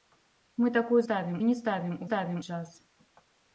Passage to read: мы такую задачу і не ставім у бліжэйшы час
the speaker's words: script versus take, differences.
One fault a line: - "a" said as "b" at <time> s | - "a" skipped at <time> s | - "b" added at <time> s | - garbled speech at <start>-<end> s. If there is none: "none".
- "задачу" said as "ставім" at 1.0 s
- "бліжэйшы" said as "ставім" at 2.1 s